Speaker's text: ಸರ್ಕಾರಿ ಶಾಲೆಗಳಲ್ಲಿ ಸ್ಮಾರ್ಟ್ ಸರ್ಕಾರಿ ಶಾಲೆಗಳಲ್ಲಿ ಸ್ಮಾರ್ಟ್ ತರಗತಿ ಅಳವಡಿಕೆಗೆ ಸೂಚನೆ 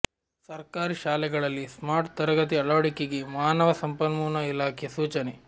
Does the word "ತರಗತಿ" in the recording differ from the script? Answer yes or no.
yes